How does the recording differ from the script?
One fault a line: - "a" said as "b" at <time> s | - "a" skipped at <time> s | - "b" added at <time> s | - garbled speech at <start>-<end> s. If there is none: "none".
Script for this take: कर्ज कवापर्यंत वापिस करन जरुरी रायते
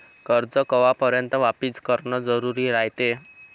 none